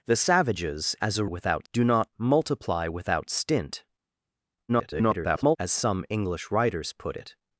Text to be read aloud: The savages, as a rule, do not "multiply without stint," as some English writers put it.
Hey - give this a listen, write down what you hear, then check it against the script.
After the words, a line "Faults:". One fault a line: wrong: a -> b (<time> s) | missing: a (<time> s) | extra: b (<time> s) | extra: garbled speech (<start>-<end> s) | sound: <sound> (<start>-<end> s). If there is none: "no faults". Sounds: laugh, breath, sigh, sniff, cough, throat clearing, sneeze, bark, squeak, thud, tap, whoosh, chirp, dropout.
The savages, as a without, do not "multiply without stint," [garbled] as some English writers put it.
Faults:
wrong: rule -> without (1.2 s)
extra: garbled speech (4.7-5.6 s)